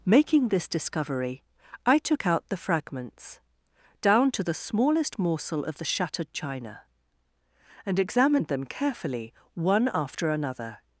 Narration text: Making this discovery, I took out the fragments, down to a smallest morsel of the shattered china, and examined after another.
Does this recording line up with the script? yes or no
no